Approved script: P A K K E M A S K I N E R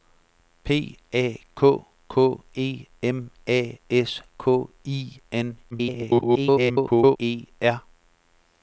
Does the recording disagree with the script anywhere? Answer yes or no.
yes